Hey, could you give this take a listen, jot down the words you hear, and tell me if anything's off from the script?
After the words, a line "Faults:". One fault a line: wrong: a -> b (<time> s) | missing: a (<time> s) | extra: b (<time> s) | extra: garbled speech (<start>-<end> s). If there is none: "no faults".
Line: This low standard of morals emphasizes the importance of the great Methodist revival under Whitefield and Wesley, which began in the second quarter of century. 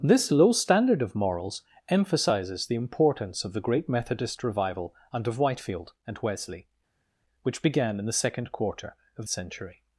This low standard of morals emphasizes the importance of the great Methodist revival under Whitefield and Wesley, which began in the second quarter of century.
Faults:
no faults